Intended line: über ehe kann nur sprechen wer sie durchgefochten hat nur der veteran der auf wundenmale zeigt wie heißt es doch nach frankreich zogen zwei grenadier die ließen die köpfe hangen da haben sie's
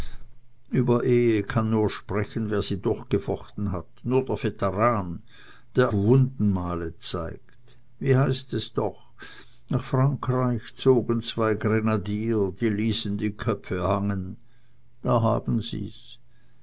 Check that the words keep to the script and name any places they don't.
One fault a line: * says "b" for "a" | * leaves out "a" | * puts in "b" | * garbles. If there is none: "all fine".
* leaves out "auf"